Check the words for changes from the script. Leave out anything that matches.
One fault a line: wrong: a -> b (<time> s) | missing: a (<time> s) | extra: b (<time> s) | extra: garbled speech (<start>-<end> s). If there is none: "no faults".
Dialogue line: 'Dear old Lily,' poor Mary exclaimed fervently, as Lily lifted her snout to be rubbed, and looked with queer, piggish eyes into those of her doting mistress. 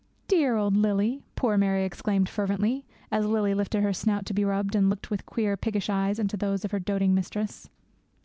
no faults